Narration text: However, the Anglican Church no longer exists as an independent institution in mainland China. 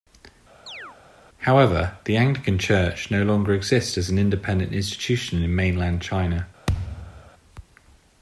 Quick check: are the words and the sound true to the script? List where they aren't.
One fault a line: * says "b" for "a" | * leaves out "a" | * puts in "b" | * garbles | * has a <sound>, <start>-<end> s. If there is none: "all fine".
* has a chirp, 0.7-1.0 s
* has a thud, 6.7-7.3 s